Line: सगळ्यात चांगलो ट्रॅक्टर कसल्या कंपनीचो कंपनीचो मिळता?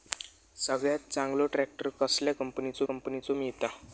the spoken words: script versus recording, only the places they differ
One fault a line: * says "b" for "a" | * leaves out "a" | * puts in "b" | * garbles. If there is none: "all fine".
all fine